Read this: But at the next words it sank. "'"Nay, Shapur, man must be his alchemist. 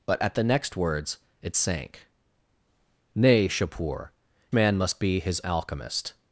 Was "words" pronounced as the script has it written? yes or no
yes